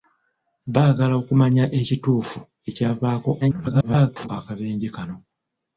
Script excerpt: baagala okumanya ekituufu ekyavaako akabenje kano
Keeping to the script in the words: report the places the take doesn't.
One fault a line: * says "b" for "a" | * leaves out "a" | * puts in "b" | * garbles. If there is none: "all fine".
* garbles